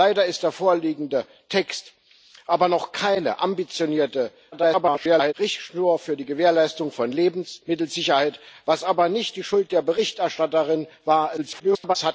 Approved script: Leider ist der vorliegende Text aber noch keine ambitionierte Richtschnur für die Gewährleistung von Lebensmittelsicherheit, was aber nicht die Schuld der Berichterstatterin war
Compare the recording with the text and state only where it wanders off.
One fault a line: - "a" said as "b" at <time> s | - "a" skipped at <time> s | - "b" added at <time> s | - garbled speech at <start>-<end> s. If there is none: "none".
- garbled speech at 4.5-5.3 s
- garbled speech at 11.4-12.0 s